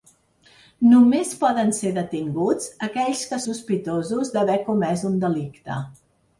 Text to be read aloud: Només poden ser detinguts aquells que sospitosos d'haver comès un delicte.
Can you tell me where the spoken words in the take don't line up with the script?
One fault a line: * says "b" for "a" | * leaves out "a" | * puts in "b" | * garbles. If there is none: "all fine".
all fine